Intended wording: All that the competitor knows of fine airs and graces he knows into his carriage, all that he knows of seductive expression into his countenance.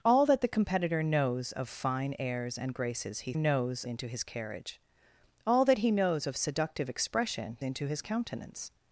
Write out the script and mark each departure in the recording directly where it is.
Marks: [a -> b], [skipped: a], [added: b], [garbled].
All that the competitor knows of fine airs and graces he knows into his carriage, all that he knows of seductive expression into his countenance.